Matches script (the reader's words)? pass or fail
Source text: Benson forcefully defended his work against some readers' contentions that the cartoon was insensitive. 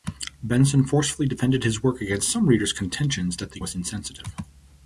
fail